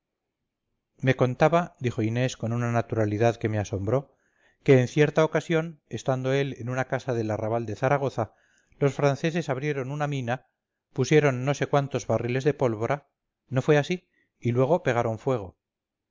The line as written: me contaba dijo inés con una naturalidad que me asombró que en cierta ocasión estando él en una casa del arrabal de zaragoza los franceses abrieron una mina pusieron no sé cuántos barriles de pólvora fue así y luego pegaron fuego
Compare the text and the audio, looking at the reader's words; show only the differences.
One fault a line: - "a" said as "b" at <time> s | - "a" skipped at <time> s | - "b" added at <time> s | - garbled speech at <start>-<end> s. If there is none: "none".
- "no" added at 13.5 s